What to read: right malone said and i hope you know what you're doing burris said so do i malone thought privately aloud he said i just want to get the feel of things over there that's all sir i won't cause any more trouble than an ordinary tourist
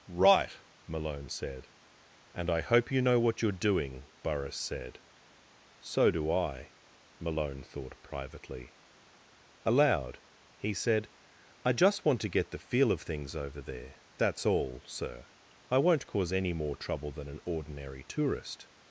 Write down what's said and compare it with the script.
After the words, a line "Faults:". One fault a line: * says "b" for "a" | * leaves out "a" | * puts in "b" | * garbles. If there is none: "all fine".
right malone said and i hope you know what you're doing burris said so do i malone thought privately aloud he said i just want to get the feel of things over there that's all sir i won't cause any more trouble than an ordinary tourist
Faults:
all fine